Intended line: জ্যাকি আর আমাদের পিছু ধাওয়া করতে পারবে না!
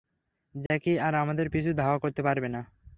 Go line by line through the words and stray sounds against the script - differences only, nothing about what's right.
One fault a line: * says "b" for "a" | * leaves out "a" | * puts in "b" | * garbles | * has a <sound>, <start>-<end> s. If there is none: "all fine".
* has a dropout, 0.7-0.7 s